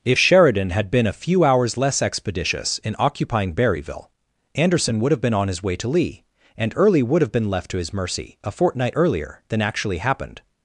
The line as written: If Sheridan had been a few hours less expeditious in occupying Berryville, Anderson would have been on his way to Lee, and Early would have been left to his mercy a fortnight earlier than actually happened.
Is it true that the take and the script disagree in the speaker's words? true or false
false